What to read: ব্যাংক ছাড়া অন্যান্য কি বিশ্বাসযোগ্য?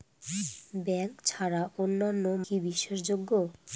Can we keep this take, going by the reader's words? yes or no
yes